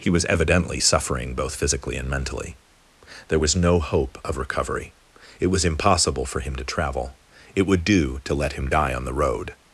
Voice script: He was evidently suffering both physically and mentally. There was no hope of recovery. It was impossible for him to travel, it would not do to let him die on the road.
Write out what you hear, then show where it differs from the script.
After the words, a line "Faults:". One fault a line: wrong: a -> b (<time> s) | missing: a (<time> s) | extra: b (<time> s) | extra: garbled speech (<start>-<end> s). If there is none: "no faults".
He was evidently suffering both physically and mentally. There was no hope of recovery. It was impossible for him to travel, it would do to let him die on the road.
Faults:
missing: not (7.8 s)